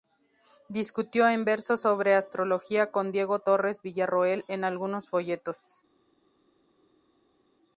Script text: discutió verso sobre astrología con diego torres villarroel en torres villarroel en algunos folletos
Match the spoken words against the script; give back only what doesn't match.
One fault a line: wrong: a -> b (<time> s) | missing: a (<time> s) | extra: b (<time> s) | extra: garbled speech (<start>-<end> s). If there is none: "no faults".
extra: en (1.3 s)
missing: torres villarroel en (4.6 s)